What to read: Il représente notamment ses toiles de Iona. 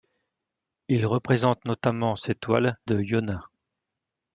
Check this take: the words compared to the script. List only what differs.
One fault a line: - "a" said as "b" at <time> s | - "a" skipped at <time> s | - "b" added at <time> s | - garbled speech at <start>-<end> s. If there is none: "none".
none